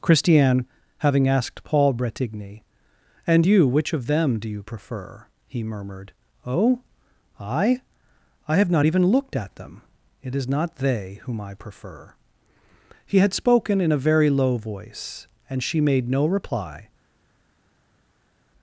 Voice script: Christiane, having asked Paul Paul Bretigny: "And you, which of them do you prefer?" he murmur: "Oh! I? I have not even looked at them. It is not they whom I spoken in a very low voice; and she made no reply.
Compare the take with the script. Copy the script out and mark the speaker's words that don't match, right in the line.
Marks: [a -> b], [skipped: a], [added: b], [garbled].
Christiane, having asked Paul [skipped: Paul] Bretigny: "And you, which of them do you prefer?" he [murmur: -> murmured] "Oh! I? I have not even looked at them. It is not they whom I [added: prefer He had] spoken in a very low voice; and she made no reply.